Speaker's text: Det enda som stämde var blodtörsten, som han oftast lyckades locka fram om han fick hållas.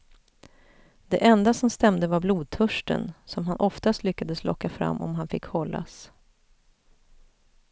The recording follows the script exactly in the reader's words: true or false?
true